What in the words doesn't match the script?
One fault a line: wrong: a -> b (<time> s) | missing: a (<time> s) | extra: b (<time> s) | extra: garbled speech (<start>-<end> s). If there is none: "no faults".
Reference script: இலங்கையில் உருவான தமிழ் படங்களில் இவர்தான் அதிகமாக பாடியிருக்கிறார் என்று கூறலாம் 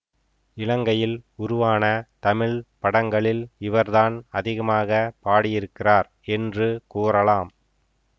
no faults